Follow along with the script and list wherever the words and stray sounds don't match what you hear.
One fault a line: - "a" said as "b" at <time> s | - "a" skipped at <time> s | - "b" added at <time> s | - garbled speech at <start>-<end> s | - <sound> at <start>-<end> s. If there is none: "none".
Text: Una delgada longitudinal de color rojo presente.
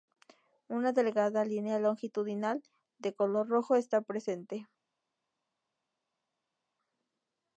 - "línea" added at 1.4 s
- "está" added at 3.8 s